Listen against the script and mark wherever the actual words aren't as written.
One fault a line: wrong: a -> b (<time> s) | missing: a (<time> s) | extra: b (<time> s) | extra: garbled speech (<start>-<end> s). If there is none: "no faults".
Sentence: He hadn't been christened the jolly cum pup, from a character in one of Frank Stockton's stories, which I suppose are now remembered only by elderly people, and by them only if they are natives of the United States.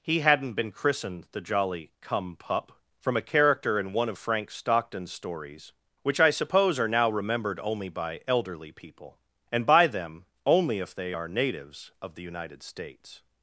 no faults